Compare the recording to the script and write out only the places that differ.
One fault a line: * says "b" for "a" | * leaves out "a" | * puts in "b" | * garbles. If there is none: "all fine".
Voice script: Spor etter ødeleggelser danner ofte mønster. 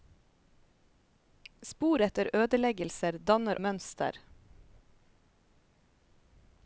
* leaves out "ofte"